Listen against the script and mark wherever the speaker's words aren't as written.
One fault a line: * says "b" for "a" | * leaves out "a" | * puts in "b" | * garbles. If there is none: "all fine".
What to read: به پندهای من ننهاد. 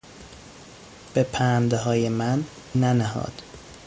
all fine